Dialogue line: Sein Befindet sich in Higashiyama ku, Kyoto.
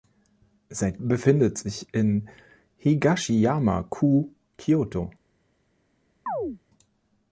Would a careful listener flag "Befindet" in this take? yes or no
no